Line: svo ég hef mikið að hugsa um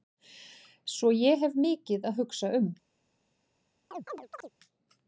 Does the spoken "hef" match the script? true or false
true